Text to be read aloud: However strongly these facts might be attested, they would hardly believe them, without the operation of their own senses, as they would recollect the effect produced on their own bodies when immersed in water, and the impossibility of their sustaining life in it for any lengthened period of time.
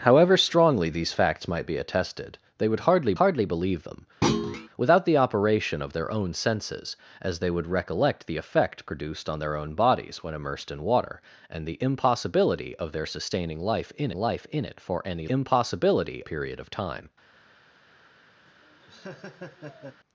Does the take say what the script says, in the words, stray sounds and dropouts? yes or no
no